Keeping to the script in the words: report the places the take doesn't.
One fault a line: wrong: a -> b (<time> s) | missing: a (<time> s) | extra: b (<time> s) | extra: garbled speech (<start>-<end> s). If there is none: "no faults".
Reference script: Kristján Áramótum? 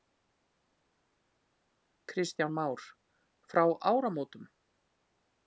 extra: Már Frá (2.5 s)